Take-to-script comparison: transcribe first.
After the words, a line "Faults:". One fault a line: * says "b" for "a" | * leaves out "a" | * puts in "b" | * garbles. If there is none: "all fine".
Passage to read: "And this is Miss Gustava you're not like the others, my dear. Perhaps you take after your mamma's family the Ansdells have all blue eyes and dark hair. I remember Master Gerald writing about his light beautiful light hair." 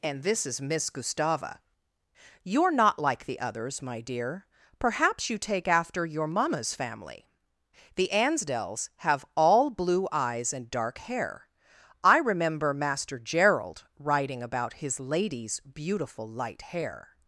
"And this is Miss Gustava you're not like the others, my dear. Perhaps you take after your mamma's family the Ansdells have all blue eyes and dark hair. I remember Master Gerald writing about his lady's beautiful light hair."
Faults:
* says "lady's" for "light"